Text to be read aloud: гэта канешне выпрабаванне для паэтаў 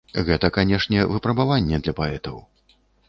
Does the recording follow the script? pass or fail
pass